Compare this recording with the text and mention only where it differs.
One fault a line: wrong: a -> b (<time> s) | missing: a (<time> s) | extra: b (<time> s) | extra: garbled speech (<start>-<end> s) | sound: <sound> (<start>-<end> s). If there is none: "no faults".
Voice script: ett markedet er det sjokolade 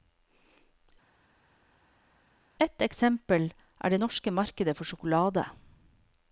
wrong: markedet -> eksempel (2.9 s)
extra: norske markedet for (4.0 s)